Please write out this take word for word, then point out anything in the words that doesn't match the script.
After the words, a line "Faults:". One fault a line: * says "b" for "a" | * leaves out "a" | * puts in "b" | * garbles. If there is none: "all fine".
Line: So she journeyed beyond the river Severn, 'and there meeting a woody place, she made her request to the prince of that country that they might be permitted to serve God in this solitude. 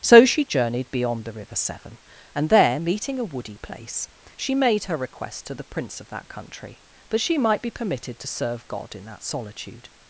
So she journeyed beyond the river Severn, 'and there meeting a woody place, she made her request to the prince of that country that she might be permitted to serve God in that solitude.
Faults:
* says "she" for "they"
* says "that" for "this"